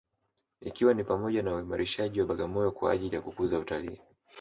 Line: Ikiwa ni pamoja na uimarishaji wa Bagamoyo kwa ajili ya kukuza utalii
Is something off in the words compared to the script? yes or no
no